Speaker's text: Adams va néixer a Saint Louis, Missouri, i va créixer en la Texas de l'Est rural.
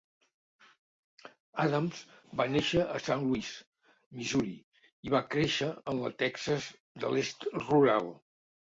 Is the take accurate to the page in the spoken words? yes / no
yes